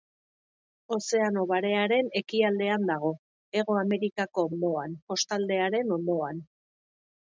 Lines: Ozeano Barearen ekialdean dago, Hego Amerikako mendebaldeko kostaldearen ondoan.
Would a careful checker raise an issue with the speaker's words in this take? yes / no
yes